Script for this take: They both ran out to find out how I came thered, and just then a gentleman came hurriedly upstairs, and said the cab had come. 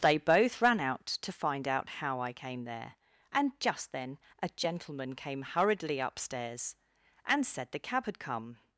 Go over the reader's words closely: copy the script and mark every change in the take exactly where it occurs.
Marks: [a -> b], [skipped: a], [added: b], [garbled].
They both ran out to find out how I came [thered, -> there] and just then a gentleman came hurriedly upstairs, and said the cab had come.